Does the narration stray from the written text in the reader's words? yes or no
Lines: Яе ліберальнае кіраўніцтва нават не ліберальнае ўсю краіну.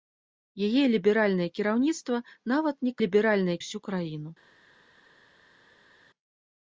no